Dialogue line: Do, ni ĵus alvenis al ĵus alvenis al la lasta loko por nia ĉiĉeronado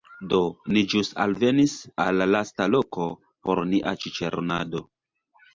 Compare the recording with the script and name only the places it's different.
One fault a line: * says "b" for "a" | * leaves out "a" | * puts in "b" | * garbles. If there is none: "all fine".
* leaves out "ĵus alvenis al"